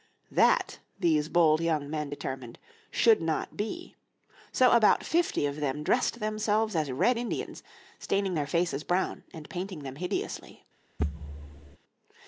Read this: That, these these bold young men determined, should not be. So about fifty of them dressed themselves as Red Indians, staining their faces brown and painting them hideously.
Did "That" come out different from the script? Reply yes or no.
no